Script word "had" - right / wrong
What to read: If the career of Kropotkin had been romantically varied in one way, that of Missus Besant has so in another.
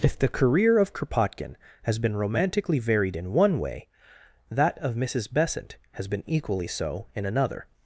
wrong